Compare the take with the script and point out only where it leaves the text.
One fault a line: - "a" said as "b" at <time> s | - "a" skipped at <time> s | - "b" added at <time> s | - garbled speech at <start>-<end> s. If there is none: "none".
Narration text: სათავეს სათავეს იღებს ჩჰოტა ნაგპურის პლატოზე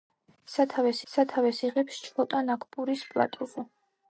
none